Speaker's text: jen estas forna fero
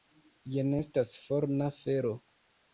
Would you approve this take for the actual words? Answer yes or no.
yes